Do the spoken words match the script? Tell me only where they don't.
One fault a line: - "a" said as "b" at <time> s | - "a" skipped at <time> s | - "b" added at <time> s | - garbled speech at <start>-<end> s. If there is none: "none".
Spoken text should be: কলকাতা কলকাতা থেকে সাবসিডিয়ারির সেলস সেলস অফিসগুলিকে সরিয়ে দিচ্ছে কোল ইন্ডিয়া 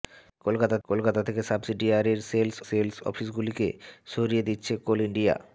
none